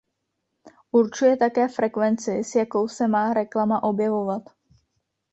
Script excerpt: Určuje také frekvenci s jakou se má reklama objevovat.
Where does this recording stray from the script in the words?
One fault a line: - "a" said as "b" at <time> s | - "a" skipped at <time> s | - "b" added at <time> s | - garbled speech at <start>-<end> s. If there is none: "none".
none